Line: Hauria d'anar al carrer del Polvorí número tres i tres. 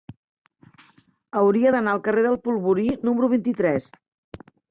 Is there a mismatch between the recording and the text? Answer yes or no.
yes